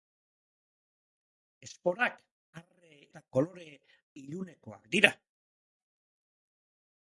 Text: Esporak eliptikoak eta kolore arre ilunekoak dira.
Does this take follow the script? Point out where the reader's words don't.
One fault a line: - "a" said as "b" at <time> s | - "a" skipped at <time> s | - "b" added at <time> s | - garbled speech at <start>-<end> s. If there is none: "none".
- "eliptikoak" said as "arre" at 2.6 s
- "arre" skipped at 3.7 s